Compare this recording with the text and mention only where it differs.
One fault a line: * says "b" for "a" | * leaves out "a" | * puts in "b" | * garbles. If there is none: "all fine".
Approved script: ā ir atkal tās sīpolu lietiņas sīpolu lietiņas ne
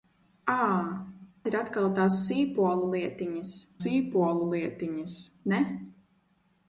all fine